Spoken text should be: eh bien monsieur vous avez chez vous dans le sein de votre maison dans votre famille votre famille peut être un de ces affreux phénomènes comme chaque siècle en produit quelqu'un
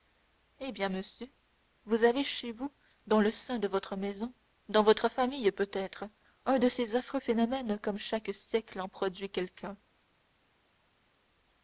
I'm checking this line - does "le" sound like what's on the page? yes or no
yes